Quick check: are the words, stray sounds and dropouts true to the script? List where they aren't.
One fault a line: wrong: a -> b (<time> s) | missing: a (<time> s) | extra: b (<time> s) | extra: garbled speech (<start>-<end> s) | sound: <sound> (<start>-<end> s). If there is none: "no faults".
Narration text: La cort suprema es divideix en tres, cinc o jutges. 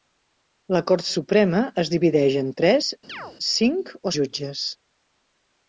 sound: chirp (3.1-3.4 s)